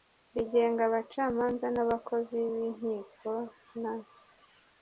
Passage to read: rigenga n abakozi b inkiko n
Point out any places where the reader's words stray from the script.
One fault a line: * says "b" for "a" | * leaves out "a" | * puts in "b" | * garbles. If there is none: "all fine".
* puts in "abacamanza"